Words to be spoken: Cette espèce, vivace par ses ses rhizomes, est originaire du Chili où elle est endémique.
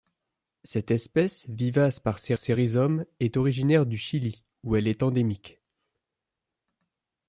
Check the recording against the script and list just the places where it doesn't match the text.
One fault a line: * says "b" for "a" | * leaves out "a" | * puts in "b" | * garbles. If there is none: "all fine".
all fine